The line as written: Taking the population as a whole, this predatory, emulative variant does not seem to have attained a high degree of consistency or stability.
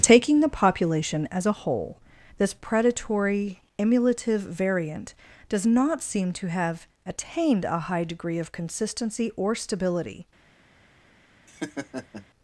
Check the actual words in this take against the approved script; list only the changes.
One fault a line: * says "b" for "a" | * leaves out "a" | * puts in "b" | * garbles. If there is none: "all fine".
all fine